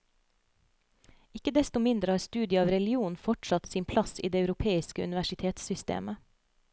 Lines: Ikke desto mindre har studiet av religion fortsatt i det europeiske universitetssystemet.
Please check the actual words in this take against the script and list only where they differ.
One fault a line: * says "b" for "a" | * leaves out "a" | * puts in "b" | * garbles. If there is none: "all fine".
* puts in "sin plass"